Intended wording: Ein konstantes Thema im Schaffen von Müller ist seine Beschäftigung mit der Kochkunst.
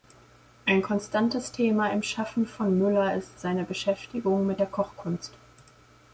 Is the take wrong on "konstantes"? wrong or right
right